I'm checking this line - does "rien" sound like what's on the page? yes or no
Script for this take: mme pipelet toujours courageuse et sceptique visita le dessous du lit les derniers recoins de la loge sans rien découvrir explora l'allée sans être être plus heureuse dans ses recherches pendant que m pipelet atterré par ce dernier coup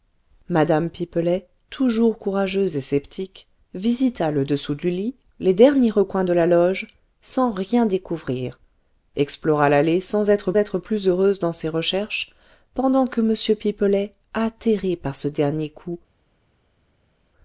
yes